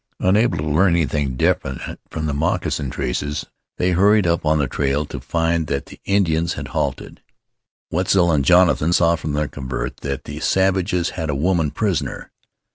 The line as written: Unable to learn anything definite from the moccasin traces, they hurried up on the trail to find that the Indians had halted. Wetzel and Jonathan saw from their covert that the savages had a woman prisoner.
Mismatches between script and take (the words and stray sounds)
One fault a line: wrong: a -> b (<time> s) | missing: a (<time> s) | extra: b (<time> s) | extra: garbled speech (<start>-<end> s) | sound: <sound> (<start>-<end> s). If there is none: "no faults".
no faults